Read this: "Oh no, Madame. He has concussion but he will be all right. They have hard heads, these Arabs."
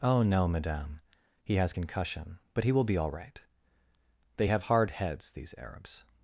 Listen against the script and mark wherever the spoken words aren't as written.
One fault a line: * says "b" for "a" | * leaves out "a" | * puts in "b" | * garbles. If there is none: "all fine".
all fine